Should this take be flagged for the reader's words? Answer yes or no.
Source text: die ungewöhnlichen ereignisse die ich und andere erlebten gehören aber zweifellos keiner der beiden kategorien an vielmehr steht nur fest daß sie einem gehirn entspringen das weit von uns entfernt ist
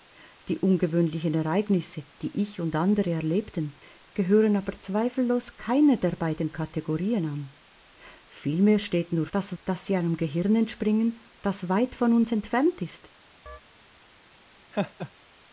yes